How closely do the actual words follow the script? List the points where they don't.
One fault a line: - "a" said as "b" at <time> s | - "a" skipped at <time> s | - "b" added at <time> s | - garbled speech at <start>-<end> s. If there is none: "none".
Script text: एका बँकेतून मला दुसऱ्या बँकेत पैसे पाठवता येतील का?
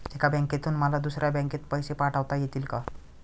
none